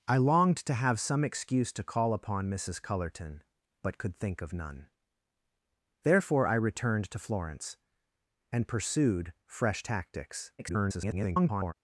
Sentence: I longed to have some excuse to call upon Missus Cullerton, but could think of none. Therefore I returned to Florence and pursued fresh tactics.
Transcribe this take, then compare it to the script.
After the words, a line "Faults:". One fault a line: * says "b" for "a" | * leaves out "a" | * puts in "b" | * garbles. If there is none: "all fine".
I longed to have some excuse to call upon Missus Cullerton, but could think of none. Therefore I returned to Florence and pursued fresh tactics. [garbled]
Faults:
* garbles